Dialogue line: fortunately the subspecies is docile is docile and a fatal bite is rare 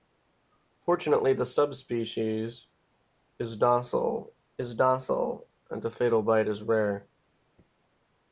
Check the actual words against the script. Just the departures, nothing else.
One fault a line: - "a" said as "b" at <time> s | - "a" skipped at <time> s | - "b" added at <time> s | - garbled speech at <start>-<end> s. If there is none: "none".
none